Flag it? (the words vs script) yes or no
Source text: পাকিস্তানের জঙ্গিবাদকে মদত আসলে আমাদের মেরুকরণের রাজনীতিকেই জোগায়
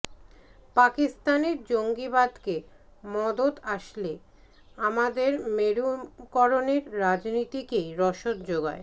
yes